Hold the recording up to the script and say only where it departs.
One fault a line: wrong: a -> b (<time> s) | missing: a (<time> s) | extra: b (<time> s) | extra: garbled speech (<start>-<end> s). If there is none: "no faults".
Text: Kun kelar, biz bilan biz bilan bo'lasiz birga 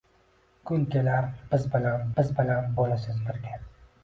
no faults